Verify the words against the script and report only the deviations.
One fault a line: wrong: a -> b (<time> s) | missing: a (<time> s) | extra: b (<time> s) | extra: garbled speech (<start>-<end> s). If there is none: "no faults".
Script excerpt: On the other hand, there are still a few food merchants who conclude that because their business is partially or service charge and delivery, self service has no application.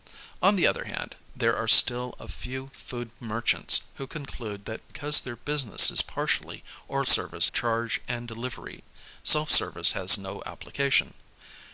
no faults